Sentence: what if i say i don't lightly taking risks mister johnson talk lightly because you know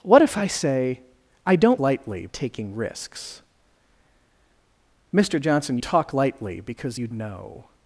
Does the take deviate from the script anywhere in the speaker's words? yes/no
no